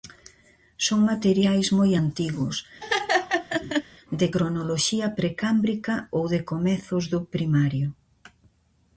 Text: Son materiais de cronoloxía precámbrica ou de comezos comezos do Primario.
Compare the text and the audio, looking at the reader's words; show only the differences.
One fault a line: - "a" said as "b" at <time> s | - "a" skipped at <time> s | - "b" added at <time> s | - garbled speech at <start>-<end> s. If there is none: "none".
- "moi antigos" added at 1.8 s
- "comezos" skipped at 7.0 s